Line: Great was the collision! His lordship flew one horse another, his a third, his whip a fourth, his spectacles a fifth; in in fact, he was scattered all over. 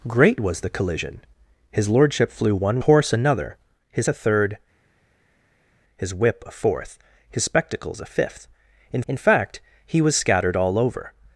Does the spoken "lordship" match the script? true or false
true